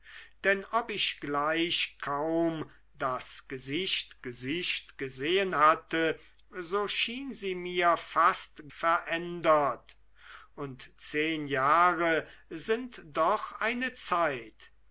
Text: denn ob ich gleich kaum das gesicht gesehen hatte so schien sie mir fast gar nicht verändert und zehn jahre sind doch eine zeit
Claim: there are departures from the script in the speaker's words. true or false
true